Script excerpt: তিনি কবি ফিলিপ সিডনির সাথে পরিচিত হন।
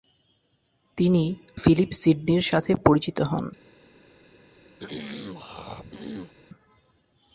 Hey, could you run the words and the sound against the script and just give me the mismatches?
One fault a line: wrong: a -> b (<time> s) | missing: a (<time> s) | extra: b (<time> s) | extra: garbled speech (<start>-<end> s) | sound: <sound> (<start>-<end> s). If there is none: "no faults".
missing: কবি (1.2 s)
sound: throat clearing (4.8-6.3 s)